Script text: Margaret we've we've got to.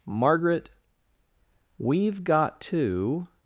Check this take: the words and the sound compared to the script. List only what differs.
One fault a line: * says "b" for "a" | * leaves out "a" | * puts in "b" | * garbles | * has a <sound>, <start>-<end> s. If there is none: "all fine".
* leaves out "we've"